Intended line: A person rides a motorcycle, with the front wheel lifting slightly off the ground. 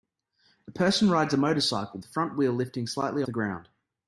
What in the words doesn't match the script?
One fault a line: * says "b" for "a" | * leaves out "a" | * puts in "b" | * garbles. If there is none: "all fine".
* leaves out "with"
* leaves out "off"